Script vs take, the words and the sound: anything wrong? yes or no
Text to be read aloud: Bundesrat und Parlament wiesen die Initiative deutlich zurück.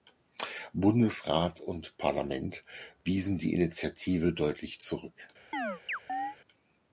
yes